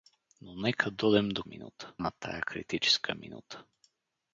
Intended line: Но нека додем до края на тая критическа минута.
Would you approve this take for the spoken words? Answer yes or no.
no